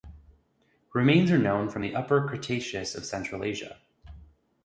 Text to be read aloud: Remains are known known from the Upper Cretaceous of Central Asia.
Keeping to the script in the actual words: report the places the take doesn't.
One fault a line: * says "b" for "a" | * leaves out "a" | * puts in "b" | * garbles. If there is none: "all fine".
* leaves out "known"